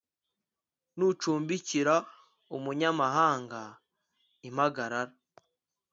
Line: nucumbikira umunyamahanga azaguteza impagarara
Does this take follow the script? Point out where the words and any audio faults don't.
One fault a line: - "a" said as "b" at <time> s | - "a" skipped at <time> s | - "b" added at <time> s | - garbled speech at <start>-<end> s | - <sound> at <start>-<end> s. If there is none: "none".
- "azaguteza" skipped at 3.6 s